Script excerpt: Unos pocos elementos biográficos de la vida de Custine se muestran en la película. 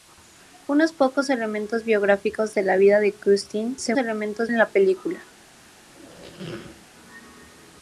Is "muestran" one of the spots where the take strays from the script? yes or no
yes